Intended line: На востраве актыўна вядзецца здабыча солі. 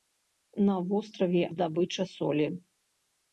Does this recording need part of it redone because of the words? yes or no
yes